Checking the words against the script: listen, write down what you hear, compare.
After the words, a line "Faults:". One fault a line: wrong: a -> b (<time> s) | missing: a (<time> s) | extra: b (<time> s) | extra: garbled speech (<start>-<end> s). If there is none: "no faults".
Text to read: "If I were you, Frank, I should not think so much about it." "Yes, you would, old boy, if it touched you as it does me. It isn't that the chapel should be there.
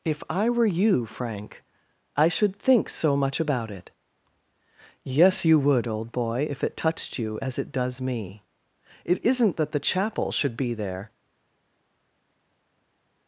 "If I were you, Frank, I should think so much about it." "Yes, you would, old boy, if it touched you as it does me. It isn't that the chapel should be there.
Faults:
missing: not (2.5 s)